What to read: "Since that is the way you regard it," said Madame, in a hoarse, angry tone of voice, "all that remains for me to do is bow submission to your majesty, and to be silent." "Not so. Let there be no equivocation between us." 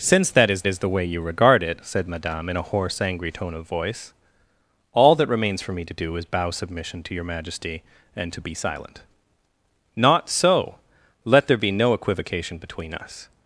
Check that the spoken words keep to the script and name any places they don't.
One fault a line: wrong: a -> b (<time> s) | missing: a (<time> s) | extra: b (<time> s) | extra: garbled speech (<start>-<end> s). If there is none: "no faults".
extra: is (0.7 s)